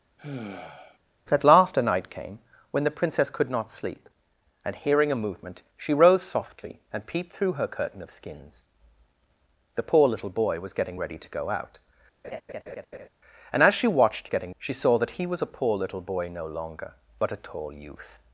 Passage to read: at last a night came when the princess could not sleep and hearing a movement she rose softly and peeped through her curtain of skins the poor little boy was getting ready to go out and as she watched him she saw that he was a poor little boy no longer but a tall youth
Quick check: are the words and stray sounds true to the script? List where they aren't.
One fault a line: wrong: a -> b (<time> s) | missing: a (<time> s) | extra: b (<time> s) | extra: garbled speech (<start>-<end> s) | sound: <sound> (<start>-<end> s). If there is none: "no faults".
sound: sigh (0.2-1.0 s)
sound: laugh (12.2-13.1 s)
wrong: him -> getting (14.3 s)